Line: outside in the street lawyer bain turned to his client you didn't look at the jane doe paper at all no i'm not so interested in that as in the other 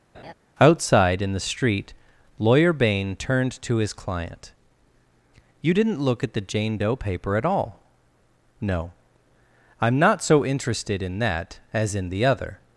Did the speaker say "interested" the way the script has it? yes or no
yes